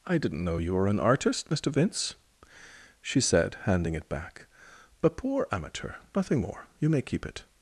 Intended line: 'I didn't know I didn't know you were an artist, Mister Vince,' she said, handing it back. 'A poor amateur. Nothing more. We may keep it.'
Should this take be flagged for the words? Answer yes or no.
yes